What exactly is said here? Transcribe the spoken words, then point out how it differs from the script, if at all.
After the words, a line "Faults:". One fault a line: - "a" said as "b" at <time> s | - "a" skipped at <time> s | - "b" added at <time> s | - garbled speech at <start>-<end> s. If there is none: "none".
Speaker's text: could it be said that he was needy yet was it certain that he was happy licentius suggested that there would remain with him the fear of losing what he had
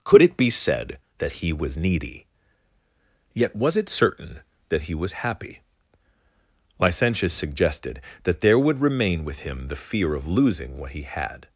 could it be said that he was needy yet was it certain that he was happy licentius suggested that there would remain with him the fear of losing what he had
Faults:
none